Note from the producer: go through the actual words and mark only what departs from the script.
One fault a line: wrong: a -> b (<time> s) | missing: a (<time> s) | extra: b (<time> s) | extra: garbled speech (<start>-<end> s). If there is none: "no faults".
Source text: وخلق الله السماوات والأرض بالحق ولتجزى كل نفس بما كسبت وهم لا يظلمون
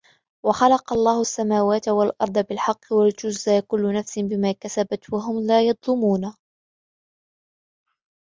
no faults